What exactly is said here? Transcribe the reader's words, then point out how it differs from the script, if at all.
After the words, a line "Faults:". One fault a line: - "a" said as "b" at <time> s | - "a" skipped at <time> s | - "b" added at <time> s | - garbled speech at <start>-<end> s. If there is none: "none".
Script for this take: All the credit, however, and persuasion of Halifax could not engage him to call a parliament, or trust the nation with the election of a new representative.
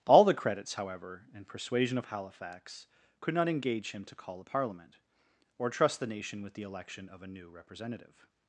All the credits, however, and persuasion of Halifax could not engage him to call a parliament, or trust the nation with the election of a new representative.
Faults:
- "credit" said as "credits" at 0.3 s